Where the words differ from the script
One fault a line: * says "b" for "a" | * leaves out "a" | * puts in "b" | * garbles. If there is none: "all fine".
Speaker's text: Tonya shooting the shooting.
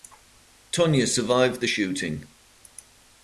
* says "survived" for "shooting"